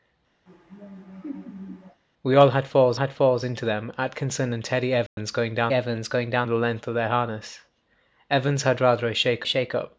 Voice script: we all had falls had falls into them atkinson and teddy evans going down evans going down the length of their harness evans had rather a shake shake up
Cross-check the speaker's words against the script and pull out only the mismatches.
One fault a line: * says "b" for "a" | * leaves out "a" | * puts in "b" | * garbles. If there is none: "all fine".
all fine